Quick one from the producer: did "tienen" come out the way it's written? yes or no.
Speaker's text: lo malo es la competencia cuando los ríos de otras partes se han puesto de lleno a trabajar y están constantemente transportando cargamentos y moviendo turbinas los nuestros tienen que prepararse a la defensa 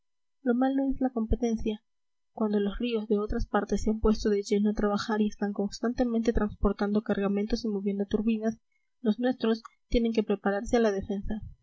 yes